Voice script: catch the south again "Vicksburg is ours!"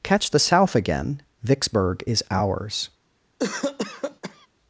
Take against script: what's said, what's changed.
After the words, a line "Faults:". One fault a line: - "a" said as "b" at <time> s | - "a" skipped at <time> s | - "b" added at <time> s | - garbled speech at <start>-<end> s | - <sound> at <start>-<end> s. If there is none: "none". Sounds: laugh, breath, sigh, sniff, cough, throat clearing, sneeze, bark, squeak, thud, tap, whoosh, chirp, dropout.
catch the south again "Vicksburg is ours!"
Faults:
- cough at 3.4-4.5 s